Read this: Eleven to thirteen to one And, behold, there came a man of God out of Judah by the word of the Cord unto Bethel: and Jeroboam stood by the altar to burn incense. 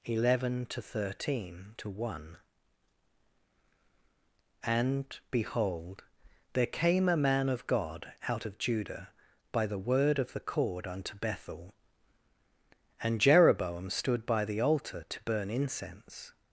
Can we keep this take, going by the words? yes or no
yes